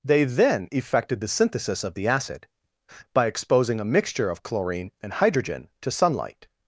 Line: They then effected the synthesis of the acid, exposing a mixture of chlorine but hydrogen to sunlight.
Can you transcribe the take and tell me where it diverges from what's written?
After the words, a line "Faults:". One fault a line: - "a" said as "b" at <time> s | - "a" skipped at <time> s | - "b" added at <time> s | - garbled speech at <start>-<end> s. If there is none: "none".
They then effected the synthesis of the acid, by exposing a mixture of chlorine and hydrogen to sunlight.
Faults:
- "by" added at 3.1 s
- "but" said as "and" at 5.0 s